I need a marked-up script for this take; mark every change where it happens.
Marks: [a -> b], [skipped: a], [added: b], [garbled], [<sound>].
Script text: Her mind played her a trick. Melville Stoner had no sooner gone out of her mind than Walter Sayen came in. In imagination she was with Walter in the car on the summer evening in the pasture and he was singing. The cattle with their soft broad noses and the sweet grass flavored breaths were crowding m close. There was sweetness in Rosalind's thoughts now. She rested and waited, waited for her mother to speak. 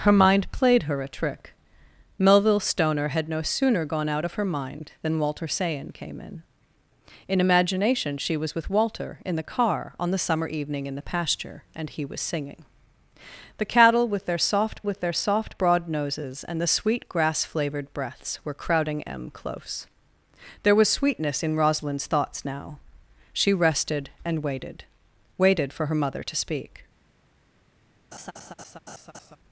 Her mind played her a trick. Melville Stoner had no sooner gone out of her mind than Walter Sayen came in. In imagination she was with Walter in the car on the summer evening in the pasture and he was singing. The cattle with their soft [added: with their soft] broad noses and the sweet grass flavored breaths were crowding m close. There was sweetness in Rosalind's thoughts now. She rested and waited, waited for her mother to speak. [laugh]